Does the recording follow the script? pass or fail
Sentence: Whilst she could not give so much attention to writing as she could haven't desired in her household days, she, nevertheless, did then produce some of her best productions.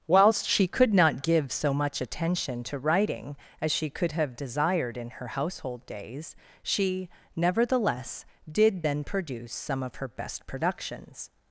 fail